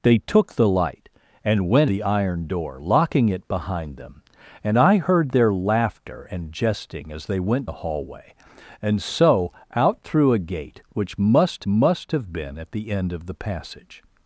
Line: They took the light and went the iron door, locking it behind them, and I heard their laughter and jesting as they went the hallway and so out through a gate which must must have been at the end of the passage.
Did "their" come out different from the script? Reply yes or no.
no